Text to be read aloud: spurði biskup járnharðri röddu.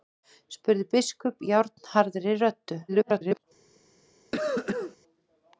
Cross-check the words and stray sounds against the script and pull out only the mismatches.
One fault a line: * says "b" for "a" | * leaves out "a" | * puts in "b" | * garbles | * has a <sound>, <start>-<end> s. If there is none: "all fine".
* garbles
* has a cough, 4.3-5.0 s